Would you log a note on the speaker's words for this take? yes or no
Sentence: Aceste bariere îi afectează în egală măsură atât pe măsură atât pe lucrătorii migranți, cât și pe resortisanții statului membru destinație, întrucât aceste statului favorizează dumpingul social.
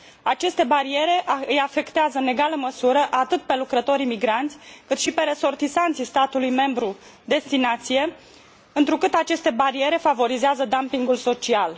yes